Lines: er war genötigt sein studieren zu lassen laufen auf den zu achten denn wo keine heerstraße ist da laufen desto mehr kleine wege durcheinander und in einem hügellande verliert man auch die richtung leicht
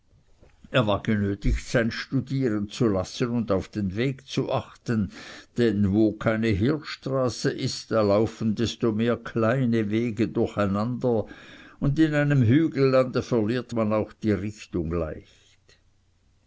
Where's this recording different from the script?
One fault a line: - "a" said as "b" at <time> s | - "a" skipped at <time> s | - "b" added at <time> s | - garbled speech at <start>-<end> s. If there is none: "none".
- "laufen" said as "und" at 3.3 s
- "weg" added at 4.0 s